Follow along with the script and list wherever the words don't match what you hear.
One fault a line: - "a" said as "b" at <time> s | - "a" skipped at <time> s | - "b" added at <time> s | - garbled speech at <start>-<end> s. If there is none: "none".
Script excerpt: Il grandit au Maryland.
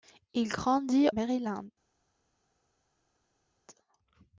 - "au" skipped at 1.1 s